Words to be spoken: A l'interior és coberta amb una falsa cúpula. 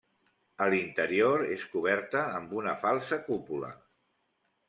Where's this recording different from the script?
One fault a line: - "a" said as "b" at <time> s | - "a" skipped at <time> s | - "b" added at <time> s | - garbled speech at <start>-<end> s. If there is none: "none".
none